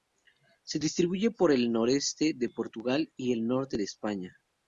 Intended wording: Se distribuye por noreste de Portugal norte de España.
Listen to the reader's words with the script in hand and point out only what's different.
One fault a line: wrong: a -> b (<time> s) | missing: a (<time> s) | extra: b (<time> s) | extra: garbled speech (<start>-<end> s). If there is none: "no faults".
extra: el (1.5 s)
extra: y el (3.1 s)